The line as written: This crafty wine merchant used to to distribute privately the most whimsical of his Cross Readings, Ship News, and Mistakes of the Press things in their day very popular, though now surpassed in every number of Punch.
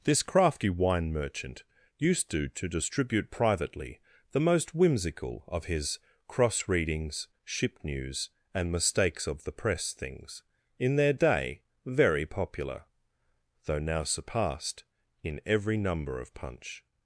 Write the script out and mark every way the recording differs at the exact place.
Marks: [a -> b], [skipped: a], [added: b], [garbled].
This crafty wine merchant used to to distribute privately the most whimsical of his Cross Readings, Ship News, and Mistakes of the Press things in their day very popular, though now surpassed in every number of Punch.